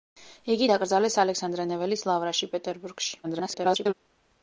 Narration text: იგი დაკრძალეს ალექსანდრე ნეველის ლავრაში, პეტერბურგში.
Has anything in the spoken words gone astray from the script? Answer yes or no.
yes